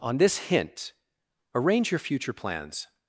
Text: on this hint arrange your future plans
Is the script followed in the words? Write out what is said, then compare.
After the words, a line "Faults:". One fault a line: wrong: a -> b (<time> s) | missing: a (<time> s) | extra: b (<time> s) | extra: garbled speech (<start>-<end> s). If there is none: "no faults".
on this hint arrange your future plans
Faults:
no faults